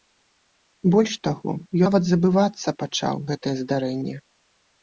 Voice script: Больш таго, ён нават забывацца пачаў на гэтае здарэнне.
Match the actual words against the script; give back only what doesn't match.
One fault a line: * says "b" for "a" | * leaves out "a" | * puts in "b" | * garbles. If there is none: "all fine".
* leaves out "ён"
* leaves out "на"